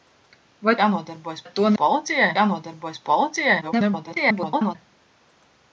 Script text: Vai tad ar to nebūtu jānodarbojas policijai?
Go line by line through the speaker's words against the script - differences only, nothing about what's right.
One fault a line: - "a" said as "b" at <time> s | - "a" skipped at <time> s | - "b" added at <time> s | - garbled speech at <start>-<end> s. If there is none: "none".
- "tad" said as "jānodarbojas" at 0.8 s
- "nebūtu" said as "policijai" at 1.8 s
- garbled speech at 3.6-4.8 s